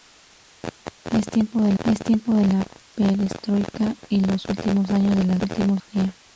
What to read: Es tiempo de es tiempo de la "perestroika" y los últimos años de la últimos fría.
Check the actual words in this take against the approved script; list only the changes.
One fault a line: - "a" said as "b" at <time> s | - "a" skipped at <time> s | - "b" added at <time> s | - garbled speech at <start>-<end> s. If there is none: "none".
none